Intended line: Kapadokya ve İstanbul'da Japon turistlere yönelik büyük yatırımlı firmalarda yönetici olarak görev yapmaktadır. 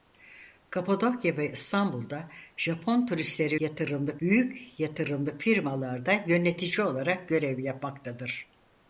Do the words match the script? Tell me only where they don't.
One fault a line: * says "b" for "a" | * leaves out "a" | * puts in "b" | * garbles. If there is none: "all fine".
* says "yatırımlı" for "yönelik"